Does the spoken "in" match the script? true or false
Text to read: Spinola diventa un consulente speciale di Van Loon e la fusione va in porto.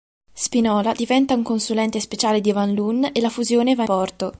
false